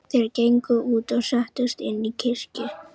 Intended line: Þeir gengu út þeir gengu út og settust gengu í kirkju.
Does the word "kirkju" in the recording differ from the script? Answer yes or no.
no